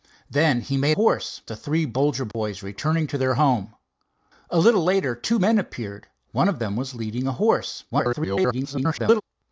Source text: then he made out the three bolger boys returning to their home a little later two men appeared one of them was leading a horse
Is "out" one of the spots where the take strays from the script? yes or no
yes